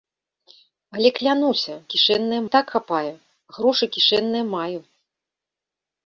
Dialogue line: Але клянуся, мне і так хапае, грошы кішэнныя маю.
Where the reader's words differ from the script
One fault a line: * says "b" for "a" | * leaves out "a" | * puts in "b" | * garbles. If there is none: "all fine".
* says "кішэнныя" for "мне"